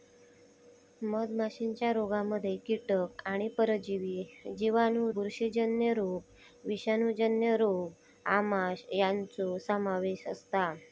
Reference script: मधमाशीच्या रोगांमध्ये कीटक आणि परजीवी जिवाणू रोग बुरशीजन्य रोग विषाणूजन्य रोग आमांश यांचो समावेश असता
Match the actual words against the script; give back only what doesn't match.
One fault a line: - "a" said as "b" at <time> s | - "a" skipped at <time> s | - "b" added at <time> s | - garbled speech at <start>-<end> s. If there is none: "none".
- "रोग" skipped at 5.1 s